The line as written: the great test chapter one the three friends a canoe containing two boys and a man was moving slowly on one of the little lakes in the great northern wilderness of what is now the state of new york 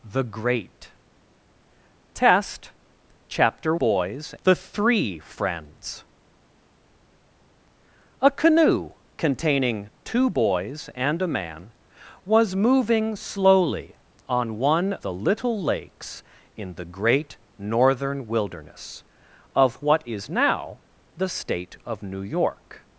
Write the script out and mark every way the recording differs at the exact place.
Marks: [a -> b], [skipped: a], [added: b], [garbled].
the great test chapter [one -> boys] the three friends a canoe containing two boys and a man was moving slowly on one [skipped: of] the little lakes in the great northern wilderness of what is now the state of new york